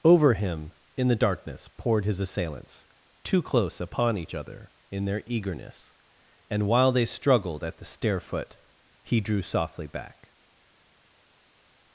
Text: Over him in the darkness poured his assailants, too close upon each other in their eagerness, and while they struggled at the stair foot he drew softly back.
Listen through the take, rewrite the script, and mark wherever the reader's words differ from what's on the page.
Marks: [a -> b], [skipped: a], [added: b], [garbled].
Over him in the darkness poured his assailants, too close upon each other in their eagerness, and while they struggled at the stair foot he drew softly back.